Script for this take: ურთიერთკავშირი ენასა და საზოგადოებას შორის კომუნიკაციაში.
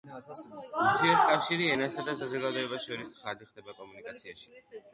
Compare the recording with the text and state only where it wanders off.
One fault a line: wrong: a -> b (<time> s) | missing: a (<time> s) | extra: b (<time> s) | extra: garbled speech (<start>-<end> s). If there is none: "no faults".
extra: ცხადი ხდება (3.2 s)